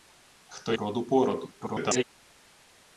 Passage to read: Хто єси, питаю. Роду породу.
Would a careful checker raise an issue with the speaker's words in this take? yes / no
yes